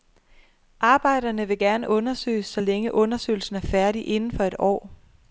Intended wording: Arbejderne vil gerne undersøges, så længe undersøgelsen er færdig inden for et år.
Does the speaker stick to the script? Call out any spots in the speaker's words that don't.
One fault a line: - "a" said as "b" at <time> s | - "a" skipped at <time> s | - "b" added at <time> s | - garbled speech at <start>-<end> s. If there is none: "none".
none